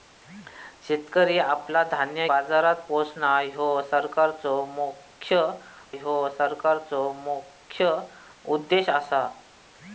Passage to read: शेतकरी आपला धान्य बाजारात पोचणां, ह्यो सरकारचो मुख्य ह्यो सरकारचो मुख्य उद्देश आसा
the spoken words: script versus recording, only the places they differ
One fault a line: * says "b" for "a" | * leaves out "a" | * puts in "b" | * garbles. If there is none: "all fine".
all fine